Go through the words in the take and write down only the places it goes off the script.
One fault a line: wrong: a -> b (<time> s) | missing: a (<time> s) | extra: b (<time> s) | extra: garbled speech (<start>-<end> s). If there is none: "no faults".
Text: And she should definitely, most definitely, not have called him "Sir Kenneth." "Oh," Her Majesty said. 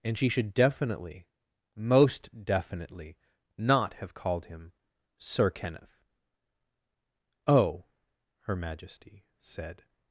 no faults